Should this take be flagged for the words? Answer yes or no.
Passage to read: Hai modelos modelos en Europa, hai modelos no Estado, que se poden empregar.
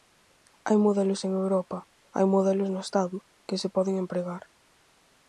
yes